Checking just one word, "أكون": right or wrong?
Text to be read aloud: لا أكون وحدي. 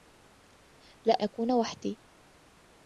right